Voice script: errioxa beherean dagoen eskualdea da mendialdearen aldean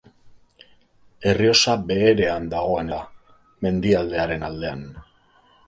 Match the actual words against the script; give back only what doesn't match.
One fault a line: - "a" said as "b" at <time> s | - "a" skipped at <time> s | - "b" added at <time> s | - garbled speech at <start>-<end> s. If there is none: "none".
- "eskualdea" skipped at 2.9 s